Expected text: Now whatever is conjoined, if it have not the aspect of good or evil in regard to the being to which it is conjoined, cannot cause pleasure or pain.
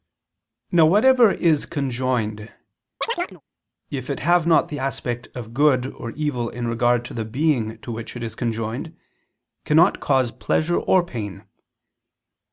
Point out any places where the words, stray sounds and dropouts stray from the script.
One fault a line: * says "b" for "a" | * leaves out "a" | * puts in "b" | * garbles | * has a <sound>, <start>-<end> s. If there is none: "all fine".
* has a chirp, 3.0-3.4 s